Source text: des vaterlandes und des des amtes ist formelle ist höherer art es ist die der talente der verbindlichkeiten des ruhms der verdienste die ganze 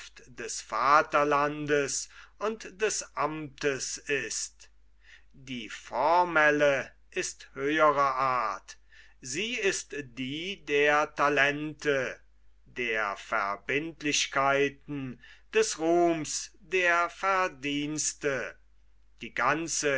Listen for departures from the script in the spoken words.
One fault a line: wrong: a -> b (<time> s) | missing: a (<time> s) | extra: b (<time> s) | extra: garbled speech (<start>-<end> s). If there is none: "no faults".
missing: des (3.0 s)
extra: die (5.3 s)
wrong: es -> sie (9.2 s)